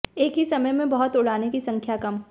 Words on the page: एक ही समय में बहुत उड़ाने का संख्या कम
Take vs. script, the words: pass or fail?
fail